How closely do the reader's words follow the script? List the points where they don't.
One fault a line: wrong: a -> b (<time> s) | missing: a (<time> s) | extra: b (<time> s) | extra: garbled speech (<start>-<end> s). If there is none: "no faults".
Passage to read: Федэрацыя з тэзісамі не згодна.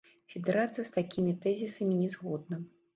extra: такімі (1.0 s)